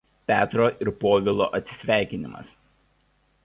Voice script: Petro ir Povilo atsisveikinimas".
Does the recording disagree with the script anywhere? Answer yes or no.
no